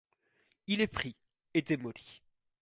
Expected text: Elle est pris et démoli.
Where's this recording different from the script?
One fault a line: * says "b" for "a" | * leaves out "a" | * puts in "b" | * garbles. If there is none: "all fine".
* says "Il" for "Elle"